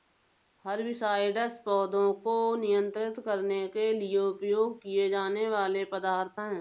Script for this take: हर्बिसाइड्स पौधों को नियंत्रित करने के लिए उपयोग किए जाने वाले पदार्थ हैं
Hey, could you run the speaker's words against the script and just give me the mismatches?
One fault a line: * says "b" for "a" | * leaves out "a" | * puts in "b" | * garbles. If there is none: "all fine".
all fine